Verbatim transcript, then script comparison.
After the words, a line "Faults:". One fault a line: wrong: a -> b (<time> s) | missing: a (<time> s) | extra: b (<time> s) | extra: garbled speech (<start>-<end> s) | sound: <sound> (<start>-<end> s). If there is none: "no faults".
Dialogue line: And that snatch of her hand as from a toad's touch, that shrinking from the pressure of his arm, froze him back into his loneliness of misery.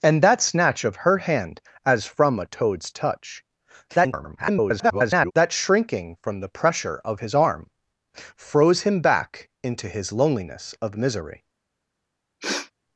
And that snatch of her hand as from a toad's touch, [garbled] that shrinking from the pressure of his arm, froze him back into his loneliness of misery.
Faults:
extra: garbled speech (3.9-5.3 s)
sound: sniff (12.4-12.7 s)